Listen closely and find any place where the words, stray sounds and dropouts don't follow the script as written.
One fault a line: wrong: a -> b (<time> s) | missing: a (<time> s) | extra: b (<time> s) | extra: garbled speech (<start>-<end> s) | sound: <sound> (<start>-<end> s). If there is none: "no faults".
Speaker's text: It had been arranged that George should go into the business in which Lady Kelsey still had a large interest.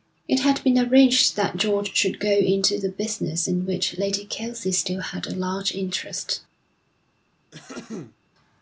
sound: throat clearing (7.5-8.2 s)